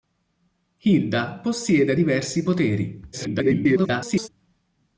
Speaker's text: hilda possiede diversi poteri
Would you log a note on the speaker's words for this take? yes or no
yes